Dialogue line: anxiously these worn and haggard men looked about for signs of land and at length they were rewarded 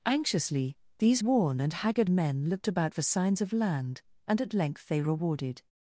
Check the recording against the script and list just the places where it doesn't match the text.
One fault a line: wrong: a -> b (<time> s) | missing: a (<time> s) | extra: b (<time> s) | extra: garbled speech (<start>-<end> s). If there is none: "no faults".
missing: were (5.0 s)